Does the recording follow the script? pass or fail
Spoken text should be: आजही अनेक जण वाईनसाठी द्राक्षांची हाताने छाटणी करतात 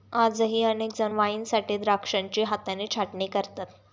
pass